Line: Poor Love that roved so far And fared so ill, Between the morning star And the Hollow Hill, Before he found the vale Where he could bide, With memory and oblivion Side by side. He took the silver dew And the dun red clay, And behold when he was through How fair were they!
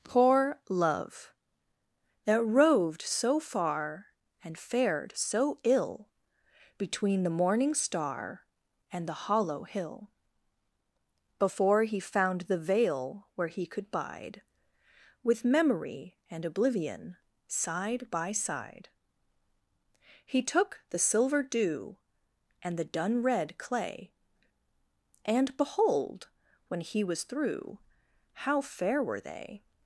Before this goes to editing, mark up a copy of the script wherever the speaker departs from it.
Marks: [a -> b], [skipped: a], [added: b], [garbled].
Poor Love that roved so far And fared so ill, Between the morning star And the Hollow Hill, Before he found the vale Where he could bide, With memory and oblivion Side by side. He took the silver dew And the dun red clay, And behold when he was through How fair were they!